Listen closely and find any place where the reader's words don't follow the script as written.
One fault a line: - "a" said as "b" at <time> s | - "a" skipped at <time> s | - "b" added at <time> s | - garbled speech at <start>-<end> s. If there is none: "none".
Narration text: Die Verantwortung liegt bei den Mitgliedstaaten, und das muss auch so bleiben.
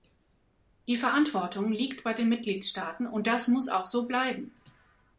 none